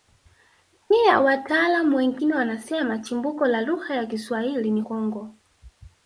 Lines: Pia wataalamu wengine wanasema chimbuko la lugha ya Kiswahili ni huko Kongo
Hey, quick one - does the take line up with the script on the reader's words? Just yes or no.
no